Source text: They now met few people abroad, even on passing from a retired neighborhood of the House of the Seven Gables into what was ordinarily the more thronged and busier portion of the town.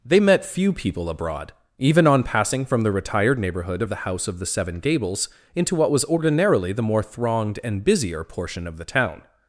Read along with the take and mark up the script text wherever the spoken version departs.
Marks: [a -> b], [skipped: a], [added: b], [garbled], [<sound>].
They [skipped: now] met few people abroad, even on passing from [a -> the] retired neighborhood of the House of the Seven Gables into what was ordinarily the more thronged and busier portion of the town.